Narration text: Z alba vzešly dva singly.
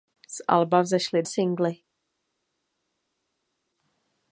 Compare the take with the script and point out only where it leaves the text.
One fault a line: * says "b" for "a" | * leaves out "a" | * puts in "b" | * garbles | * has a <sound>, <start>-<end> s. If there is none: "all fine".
* leaves out "dva"